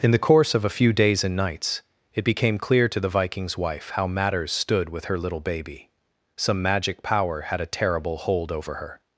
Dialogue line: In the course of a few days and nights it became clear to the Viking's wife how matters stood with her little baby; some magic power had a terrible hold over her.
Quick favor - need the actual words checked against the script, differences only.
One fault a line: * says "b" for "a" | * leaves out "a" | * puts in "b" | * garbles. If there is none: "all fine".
all fine